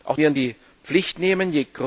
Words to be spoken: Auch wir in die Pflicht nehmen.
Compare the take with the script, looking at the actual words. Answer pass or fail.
pass